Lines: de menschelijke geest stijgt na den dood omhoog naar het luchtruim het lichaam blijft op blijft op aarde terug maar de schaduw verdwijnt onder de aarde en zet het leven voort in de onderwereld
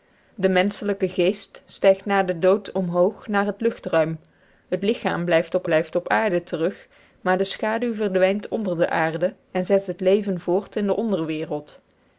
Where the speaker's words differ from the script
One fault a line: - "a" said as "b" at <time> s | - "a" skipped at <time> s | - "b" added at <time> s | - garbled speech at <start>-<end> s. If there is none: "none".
none